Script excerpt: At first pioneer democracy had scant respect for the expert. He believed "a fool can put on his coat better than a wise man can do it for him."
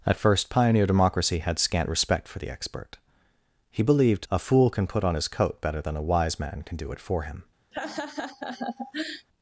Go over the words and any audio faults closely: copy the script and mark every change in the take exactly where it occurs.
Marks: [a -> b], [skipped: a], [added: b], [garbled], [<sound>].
At first pioneer democracy had scant respect for the expert. He believed "a fool can put on his coat better than a wise man can do it for him." [laugh]